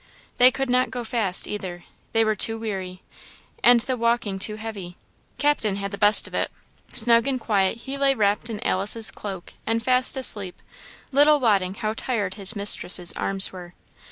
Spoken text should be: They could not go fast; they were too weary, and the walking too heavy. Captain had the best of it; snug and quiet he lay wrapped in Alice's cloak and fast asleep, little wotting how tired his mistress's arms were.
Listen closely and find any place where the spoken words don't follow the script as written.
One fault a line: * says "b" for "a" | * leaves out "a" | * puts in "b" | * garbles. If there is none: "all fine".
* puts in "either"